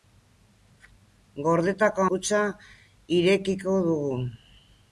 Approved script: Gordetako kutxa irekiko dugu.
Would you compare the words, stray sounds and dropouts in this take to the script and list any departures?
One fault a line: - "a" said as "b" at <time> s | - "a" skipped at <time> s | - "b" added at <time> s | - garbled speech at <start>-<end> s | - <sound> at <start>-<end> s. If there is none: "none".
none